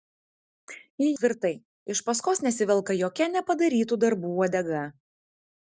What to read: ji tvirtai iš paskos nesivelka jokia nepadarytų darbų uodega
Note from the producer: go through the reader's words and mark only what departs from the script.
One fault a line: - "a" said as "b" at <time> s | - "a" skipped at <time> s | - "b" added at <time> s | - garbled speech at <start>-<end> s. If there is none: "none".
none